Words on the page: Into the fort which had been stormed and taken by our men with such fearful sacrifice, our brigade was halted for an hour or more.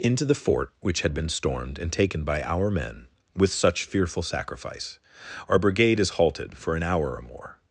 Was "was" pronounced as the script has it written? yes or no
no